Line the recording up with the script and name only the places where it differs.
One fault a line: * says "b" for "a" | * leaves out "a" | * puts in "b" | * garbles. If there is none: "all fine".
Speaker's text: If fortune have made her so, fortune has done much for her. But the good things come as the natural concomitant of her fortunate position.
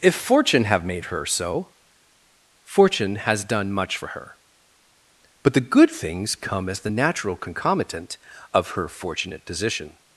all fine